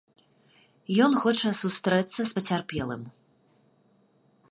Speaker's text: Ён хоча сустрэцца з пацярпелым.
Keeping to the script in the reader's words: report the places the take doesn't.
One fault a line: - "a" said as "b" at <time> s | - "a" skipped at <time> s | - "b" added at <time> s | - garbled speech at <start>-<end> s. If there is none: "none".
none